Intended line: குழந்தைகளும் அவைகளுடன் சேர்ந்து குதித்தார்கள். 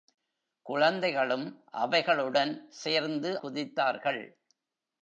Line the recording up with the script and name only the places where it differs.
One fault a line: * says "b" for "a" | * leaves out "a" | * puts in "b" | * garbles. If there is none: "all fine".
all fine